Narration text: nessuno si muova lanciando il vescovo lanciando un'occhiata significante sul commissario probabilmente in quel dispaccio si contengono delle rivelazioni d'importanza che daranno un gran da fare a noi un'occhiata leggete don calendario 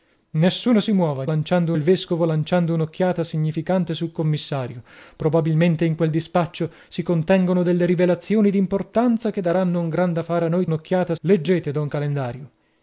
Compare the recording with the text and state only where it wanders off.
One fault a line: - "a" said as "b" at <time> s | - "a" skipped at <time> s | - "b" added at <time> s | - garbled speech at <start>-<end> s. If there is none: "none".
none